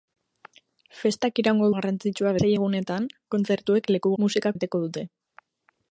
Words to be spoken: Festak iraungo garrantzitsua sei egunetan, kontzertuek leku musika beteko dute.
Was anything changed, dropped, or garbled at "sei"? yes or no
no